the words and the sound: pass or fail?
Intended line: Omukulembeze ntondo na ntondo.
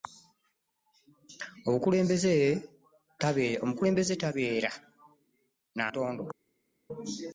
fail